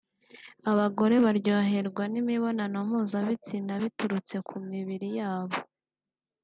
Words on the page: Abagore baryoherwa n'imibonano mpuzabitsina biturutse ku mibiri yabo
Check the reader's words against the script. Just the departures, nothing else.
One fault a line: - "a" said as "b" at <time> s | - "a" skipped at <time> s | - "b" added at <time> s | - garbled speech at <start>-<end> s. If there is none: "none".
none